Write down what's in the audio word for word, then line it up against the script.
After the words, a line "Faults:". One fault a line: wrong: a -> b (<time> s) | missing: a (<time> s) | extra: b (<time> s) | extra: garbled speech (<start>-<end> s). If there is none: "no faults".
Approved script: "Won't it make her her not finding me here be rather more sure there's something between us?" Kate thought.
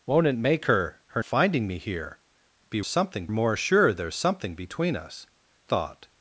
"Won't it make her her finding me here be something more sure there's something between us?" Thought.
Faults:
missing: not (1.2 s)
wrong: rather -> something (2.9 s)
missing: Kate (5.3 s)